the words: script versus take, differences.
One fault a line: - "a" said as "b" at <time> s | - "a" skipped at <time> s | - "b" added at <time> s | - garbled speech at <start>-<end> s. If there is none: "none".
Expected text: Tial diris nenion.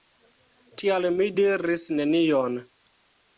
- "mi" added at 1.2 s